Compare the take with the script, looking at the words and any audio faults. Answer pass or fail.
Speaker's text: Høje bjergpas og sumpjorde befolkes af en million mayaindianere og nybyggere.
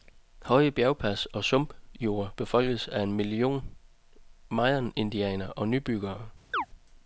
fail